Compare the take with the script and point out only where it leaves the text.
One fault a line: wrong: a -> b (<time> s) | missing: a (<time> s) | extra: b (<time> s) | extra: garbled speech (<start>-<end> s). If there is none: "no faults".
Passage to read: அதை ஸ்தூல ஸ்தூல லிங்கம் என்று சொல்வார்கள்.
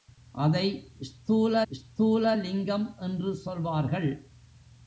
no faults